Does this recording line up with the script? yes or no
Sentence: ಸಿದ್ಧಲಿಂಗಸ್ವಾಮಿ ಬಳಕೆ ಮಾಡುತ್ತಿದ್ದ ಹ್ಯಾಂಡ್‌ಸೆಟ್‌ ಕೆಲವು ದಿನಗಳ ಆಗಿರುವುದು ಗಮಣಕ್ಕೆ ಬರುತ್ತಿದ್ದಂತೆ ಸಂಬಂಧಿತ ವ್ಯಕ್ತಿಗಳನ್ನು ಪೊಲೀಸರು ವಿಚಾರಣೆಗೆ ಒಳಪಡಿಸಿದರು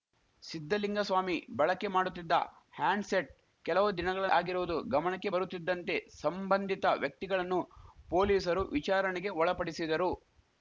yes